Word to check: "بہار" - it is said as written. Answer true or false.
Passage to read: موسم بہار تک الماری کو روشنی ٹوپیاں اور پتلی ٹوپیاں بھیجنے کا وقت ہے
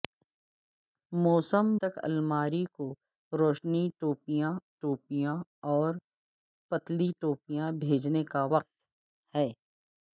false